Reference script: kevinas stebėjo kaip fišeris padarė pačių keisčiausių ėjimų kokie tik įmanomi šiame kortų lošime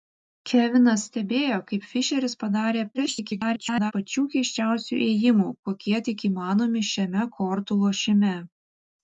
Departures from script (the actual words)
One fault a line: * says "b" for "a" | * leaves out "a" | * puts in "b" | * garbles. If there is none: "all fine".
* garbles